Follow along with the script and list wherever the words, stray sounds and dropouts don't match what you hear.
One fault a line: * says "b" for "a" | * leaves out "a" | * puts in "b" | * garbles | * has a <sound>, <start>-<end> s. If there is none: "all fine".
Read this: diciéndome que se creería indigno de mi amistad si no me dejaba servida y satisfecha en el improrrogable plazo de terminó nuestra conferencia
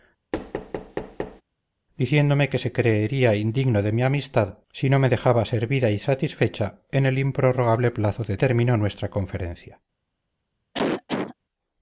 * has a thud, 0.3-1.4 s
* has a cough, 10.7-11.3 s